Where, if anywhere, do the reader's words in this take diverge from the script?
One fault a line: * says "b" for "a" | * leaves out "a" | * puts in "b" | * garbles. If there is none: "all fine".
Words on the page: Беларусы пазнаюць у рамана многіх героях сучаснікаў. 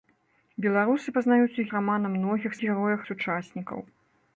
all fine